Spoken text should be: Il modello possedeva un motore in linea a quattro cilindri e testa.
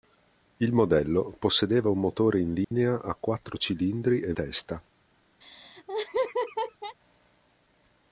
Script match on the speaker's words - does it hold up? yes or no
yes